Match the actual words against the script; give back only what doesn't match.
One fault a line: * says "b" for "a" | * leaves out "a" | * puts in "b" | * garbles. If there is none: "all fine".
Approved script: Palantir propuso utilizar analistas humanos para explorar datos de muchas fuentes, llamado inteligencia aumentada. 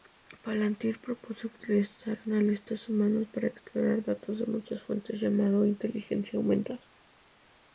all fine